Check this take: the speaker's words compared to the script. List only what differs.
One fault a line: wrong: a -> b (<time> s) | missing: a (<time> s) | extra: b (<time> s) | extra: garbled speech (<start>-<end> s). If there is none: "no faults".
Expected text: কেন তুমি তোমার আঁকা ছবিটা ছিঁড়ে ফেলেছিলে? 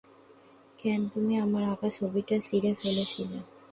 wrong: তোমার -> আমার (1.4 s)